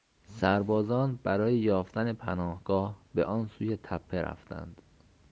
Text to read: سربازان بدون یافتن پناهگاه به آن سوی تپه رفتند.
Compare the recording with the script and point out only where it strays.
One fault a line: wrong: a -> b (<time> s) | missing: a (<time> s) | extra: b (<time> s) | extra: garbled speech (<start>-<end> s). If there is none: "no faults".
wrong: بدون -> برای (1.2 s)